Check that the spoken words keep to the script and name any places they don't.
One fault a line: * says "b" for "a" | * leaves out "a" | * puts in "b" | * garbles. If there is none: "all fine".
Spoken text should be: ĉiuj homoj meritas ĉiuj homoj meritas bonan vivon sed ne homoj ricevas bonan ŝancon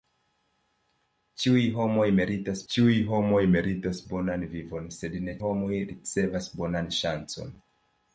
all fine